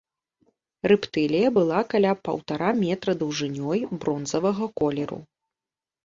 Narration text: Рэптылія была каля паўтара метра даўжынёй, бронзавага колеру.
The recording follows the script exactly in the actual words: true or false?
true